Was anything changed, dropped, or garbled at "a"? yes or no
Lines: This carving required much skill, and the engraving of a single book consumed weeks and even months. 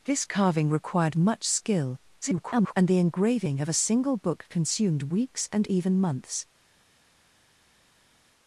no